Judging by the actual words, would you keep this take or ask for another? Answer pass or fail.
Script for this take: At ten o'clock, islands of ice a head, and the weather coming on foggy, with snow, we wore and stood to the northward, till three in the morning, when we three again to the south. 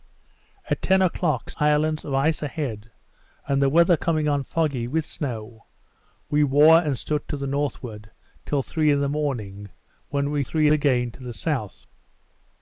pass